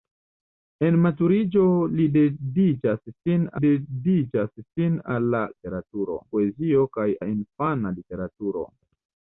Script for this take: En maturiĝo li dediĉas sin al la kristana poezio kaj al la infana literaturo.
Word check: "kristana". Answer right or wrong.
wrong